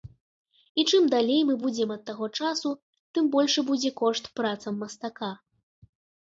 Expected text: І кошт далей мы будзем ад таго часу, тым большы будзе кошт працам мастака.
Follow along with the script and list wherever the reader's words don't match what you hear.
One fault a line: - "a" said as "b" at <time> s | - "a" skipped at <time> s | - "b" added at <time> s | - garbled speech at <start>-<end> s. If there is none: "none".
- "кошт" said as "чым" at 0.9 s